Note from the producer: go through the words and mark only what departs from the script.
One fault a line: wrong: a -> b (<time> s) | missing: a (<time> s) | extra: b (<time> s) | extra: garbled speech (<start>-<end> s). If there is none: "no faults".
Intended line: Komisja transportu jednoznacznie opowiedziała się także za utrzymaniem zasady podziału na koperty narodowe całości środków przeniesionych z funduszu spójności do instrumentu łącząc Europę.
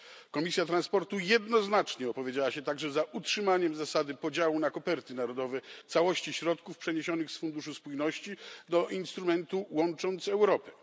no faults